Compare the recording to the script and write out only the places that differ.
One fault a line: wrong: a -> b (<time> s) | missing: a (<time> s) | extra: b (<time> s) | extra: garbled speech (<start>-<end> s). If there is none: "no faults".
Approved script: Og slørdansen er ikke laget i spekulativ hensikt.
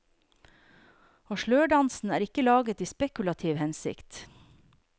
no faults